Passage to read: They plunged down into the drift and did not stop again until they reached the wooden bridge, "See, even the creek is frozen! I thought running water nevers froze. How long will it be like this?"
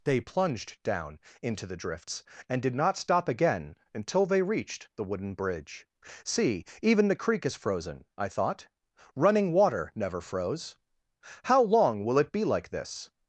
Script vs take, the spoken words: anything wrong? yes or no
yes